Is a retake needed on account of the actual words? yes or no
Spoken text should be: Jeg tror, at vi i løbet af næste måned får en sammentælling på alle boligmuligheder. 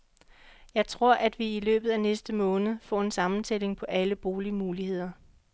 no